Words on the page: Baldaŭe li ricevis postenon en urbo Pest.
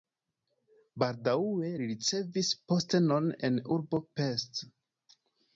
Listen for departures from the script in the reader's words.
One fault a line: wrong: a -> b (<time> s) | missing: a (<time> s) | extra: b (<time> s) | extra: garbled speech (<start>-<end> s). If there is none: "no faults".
no faults